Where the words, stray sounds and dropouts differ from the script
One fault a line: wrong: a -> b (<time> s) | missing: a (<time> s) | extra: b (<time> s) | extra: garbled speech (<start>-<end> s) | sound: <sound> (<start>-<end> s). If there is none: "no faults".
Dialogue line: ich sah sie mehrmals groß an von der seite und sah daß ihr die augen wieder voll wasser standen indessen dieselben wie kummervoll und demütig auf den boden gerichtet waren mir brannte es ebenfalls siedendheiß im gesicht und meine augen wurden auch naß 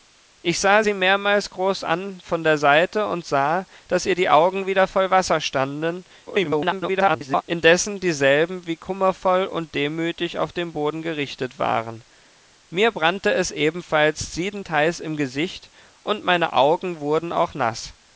extra: garbled speech (6.3-7.4 s)